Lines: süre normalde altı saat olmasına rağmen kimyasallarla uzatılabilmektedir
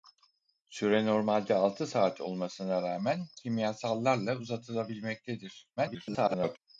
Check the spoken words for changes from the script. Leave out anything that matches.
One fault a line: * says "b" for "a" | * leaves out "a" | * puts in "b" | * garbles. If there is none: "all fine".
* garbles